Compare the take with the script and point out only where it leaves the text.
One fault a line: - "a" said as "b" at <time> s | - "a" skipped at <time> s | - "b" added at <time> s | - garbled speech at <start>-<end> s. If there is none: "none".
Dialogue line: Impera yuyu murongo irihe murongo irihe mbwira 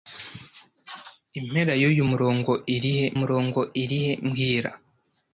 none